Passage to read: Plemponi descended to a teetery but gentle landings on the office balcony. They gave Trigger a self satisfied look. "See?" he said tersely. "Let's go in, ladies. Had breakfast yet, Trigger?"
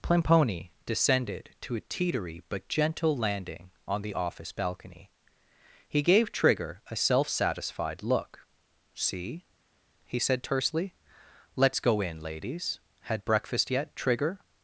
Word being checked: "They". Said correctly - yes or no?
no